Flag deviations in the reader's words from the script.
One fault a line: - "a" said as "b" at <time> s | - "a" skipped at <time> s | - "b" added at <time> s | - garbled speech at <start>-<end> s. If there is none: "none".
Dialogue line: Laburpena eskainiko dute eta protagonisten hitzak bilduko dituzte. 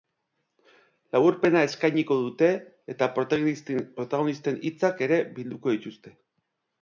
- "ere" added at 5.1 s